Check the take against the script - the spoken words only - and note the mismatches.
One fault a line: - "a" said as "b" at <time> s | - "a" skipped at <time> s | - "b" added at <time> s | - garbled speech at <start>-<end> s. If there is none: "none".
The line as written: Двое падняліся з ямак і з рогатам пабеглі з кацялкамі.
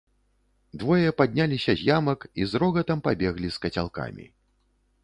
none